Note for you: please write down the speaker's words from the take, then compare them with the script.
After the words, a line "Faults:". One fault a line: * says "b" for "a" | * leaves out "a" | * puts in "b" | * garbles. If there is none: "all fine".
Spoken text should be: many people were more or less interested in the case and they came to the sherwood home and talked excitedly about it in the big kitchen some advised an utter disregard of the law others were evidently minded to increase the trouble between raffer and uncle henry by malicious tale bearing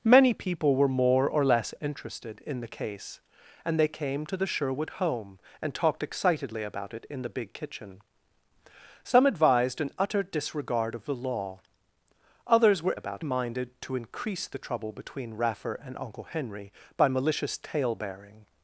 many people were more or less interested in the case and they came to the sherwood home and talked excitedly about it in the big kitchen some advised an utter disregard of the law others were about minded to increase the trouble between raffer and uncle henry by malicious tale bearing
Faults:
* says "about" for "evidently"